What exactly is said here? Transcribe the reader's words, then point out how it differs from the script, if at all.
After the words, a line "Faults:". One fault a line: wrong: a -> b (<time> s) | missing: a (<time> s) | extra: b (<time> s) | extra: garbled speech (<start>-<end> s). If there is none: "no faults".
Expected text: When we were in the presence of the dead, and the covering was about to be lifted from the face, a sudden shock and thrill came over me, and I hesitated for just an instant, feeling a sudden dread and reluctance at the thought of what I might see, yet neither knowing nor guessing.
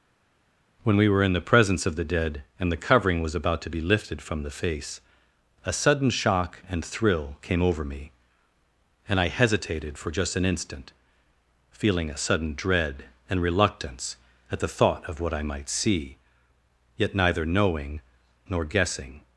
When we were in the presence of the dead, and the covering was about to be lifted from the face, a sudden shock and thrill came over me, and I hesitated for just an instant, feeling a sudden dread and reluctance at the thought of what I might see, yet neither knowing nor guessing.
Faults:
no faults